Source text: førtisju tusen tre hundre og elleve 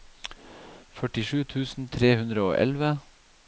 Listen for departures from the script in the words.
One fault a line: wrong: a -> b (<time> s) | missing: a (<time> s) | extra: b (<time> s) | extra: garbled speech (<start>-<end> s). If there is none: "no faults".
no faults